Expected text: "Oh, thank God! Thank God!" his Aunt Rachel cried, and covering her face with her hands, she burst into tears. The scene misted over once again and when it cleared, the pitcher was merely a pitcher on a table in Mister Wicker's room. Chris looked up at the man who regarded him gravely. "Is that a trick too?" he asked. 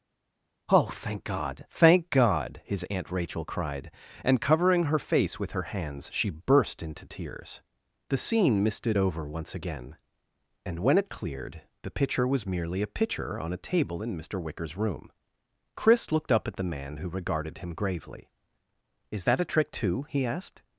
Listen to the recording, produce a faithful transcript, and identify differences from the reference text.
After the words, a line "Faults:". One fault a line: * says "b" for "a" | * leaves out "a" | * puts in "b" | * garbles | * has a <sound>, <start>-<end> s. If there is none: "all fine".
"Oh, thank God! Thank God!" his Aunt Rachel cried, and covering her face with her hands, she burst into tears. The scene misted over once again and when it cleared, the pitcher was merely a pitcher on a table in Mister Wicker's room. Chris looked up at the man who regarded him gravely. "Is that a trick too?" he asked.
Faults:
all fine